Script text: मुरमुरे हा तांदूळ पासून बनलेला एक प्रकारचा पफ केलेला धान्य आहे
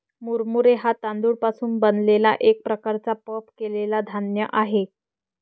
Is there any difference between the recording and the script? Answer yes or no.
no